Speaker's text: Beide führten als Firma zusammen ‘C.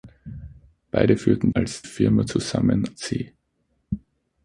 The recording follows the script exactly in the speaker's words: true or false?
true